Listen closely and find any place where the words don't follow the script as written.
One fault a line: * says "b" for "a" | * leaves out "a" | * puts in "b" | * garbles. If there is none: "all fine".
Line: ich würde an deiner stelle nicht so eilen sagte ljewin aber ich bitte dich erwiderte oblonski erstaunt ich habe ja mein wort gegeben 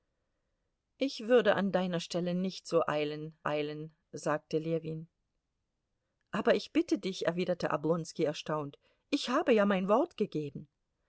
* puts in "eilen"